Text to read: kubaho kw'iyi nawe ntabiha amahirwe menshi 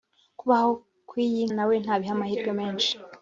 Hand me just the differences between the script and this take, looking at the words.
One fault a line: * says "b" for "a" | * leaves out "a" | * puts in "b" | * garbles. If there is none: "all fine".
all fine